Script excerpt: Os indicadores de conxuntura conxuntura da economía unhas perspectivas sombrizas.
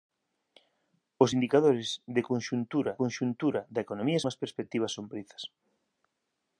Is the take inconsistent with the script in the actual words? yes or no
no